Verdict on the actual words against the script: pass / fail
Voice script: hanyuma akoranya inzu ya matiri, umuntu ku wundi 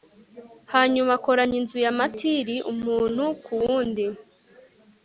pass